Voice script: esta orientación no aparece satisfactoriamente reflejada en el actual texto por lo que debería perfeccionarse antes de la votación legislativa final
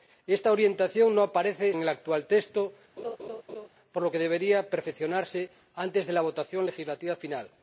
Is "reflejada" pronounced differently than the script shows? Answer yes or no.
yes